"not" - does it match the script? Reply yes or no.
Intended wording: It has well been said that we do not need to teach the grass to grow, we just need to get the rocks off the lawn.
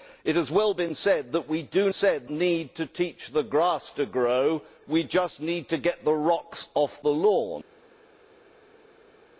no